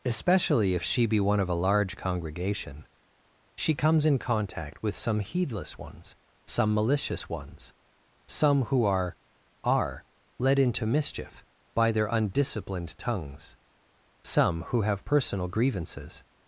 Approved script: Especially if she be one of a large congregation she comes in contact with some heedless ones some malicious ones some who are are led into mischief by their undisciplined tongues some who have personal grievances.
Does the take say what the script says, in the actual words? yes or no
yes